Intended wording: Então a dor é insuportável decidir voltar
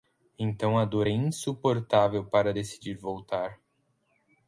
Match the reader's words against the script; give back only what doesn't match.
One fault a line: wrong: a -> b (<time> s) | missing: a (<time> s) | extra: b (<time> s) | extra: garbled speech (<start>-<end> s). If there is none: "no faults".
extra: para (2.2 s)